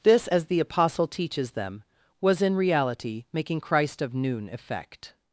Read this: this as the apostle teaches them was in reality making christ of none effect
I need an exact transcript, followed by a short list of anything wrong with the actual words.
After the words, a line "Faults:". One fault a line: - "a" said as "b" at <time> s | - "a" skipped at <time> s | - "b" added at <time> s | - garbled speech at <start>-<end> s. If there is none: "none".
this as the apostle teaches them was in reality making christ of noon effect
Faults:
- "none" said as "noon" at 4.1 s